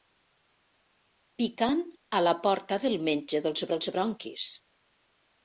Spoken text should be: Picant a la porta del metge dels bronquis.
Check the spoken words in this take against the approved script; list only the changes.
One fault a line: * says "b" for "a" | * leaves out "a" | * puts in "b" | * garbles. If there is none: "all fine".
* puts in "dels"